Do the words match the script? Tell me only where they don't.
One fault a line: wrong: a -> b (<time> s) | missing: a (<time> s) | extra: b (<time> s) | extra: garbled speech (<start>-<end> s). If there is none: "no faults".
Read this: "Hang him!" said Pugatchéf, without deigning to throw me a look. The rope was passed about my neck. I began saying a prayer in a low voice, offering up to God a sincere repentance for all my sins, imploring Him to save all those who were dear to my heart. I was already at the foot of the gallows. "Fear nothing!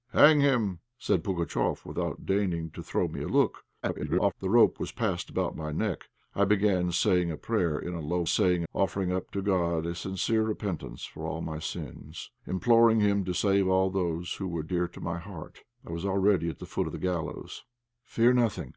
extra: garbled speech (3.8-4.3 s)
wrong: voice -> saying (8.2 s)